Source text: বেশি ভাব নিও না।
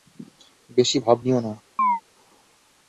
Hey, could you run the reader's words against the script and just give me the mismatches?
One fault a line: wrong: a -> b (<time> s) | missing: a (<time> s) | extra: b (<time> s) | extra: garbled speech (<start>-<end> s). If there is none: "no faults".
no faults